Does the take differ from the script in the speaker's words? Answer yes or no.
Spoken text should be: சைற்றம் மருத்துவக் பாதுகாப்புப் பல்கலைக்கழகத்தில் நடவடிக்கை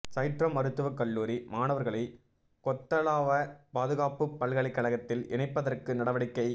yes